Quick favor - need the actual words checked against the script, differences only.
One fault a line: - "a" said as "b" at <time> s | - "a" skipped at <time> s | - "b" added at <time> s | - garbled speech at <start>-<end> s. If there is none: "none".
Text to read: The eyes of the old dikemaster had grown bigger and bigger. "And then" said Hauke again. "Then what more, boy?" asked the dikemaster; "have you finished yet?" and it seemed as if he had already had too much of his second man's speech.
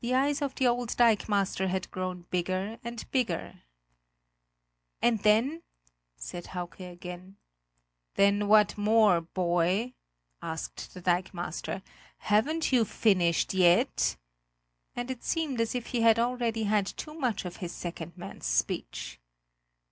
- "have" said as "haven't" at 12.2 s